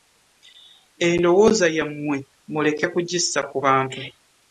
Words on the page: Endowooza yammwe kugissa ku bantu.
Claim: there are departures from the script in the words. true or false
true